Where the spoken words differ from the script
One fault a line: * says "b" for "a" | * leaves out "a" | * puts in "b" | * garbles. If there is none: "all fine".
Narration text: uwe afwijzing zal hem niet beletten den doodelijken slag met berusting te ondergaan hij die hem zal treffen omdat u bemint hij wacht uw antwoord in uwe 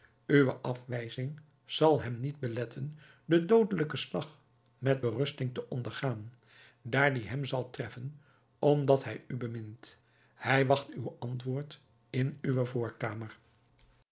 * says "daar" for "hij"
* puts in "hij"